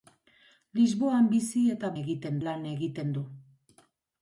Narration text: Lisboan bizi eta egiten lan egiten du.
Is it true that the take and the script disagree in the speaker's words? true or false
false